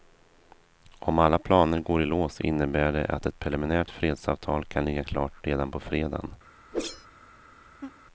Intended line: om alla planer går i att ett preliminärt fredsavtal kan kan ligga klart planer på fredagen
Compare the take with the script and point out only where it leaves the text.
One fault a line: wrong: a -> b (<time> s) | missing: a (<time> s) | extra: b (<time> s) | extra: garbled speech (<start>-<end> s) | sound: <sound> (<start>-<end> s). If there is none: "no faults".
extra: lås innebär det (2.0 s)
missing: kan (4.9 s)
wrong: planer -> redan (5.4 s)
sound: whoosh (6.7-7.1 s)
sound: laugh (7.8-8.0 s)